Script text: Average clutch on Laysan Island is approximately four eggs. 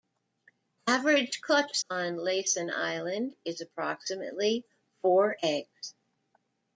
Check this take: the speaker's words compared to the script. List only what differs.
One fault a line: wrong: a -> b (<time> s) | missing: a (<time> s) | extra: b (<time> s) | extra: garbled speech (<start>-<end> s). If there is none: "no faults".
no faults